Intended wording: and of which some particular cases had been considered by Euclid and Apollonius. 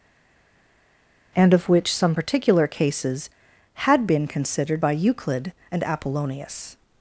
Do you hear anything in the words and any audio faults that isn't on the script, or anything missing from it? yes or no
no